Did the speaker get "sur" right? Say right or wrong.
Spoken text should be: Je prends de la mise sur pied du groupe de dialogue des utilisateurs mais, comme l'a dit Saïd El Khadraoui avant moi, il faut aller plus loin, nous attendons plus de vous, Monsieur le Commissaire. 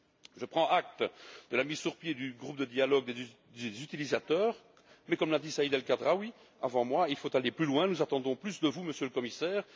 right